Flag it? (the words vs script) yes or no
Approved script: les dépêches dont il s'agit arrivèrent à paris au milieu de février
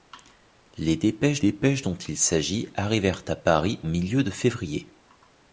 yes